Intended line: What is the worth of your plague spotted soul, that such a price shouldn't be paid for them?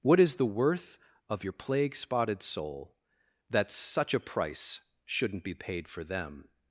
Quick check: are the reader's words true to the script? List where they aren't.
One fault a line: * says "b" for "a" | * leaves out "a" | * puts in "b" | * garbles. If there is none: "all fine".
all fine